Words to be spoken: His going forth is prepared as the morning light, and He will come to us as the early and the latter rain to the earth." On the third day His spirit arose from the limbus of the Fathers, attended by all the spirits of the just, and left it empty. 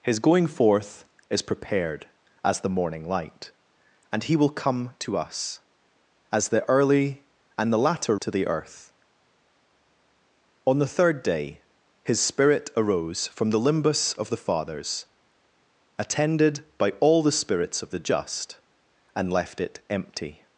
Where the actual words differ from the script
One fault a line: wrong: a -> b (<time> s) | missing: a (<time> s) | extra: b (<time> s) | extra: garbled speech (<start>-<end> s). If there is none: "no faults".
missing: rain (8.2 s)